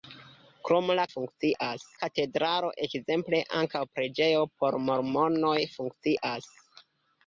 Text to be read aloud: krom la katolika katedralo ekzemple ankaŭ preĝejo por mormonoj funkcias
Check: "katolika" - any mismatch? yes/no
yes